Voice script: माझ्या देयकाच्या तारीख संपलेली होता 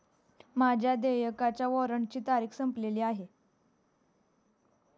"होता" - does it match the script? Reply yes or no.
no